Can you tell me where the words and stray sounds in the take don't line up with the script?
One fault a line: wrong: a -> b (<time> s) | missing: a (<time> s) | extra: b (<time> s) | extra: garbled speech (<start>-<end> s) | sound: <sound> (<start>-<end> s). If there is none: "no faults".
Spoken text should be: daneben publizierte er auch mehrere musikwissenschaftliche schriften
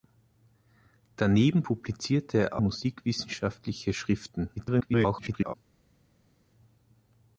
missing: auch mehrere (2.6 s)
extra: garbled speech (4.6-5.5 s)